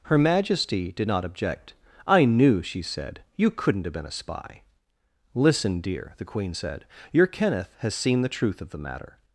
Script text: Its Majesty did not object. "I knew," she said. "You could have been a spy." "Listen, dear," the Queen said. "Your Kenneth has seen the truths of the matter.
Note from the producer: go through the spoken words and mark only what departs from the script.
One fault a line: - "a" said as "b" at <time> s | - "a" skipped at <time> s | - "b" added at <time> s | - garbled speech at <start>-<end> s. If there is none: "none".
- "Its" said as "Her" at 0.0 s
- "could" said as "couldn't" at 3.5 s
- "truths" said as "truth" at 8.3 s